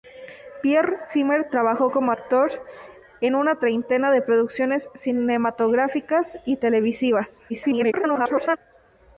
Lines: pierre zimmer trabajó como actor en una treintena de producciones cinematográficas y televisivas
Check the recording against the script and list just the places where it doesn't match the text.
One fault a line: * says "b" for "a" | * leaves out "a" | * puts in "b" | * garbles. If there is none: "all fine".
* garbles